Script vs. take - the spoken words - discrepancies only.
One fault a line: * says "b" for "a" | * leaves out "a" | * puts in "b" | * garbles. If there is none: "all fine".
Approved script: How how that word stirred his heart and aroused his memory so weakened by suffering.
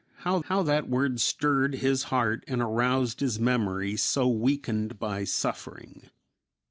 all fine